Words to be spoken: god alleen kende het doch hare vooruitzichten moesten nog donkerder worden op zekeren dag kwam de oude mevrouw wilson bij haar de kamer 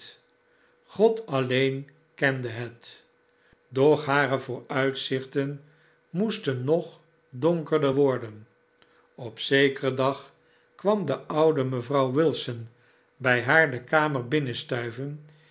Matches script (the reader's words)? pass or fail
pass